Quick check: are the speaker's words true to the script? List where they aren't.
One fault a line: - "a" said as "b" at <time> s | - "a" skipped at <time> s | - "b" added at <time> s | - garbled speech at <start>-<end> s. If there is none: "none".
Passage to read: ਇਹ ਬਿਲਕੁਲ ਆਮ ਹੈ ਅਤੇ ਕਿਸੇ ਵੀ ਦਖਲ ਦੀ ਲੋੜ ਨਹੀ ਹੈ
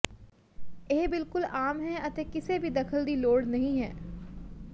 none